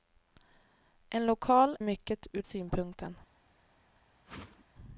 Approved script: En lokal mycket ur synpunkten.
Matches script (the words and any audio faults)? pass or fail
fail